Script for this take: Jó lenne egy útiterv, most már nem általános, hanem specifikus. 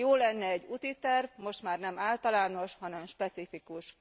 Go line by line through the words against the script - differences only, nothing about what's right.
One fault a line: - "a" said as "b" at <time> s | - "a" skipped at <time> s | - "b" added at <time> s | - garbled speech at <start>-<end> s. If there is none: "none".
none